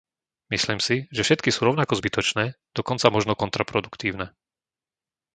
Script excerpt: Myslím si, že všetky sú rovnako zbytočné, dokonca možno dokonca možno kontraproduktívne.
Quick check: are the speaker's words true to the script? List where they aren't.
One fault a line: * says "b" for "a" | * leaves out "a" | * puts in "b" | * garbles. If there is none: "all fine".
* leaves out "dokonca možno"